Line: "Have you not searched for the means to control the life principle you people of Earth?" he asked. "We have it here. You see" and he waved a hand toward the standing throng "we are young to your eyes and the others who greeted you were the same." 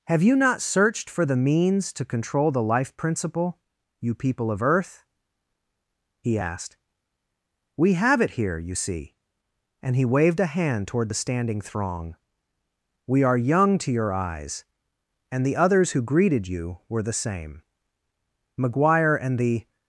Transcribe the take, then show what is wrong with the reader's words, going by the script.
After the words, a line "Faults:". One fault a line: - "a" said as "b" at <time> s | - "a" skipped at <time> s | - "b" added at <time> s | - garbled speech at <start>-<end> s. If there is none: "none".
"Have you not searched for the means to control the life principle you people of Earth?" he asked. "We have it here. You see" and he waved a hand toward the standing throng "we are young to your eyes and the others who greeted you were the same." McGuire and the
Faults:
- "McGuire and the" added at 18.6 s